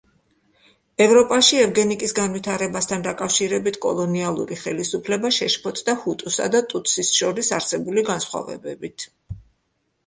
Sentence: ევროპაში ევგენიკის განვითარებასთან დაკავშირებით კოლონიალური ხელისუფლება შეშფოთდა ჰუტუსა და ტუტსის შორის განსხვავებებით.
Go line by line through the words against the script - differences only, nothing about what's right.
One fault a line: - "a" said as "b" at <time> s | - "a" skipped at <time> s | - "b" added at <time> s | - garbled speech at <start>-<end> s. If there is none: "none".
- "არსებული" added at 7.6 s